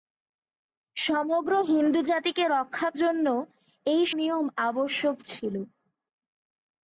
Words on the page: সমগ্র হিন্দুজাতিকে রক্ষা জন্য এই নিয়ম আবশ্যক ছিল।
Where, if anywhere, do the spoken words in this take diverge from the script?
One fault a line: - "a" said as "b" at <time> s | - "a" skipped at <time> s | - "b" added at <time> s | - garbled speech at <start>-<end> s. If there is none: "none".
none